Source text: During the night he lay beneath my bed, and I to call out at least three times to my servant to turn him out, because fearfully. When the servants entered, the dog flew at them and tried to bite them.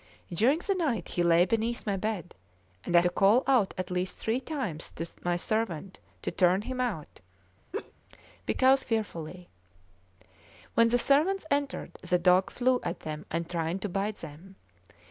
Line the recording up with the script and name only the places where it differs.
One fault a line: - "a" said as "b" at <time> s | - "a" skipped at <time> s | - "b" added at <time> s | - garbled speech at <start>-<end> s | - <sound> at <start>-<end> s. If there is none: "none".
- laugh at 7.7-7.9 s